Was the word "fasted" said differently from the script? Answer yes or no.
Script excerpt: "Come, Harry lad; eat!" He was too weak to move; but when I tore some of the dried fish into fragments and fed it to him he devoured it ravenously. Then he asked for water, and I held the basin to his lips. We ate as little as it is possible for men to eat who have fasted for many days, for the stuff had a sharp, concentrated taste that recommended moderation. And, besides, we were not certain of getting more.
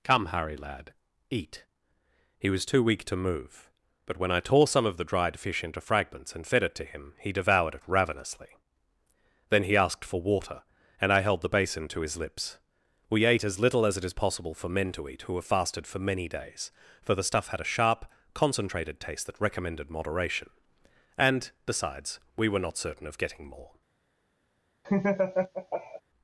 no